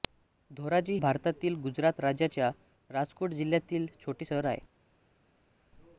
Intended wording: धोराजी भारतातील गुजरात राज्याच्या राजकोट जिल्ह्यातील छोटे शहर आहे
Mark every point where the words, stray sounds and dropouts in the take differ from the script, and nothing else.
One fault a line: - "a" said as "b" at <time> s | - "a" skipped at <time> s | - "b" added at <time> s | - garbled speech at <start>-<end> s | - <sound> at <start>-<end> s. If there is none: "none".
none